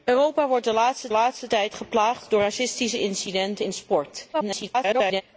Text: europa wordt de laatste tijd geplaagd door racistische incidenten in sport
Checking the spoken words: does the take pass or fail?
fail